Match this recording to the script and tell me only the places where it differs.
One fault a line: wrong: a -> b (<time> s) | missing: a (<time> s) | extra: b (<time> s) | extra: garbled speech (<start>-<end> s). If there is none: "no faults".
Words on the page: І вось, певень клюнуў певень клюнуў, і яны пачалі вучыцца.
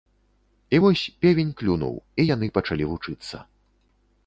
missing: певень клюнуў (2.0 s)